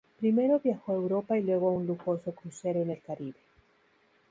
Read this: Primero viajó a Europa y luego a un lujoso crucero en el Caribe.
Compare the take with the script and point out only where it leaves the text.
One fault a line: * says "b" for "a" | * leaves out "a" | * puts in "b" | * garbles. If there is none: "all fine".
all fine